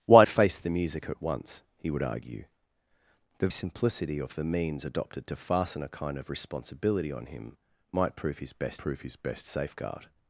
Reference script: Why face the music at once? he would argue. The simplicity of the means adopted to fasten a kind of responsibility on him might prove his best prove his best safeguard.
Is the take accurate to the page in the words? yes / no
yes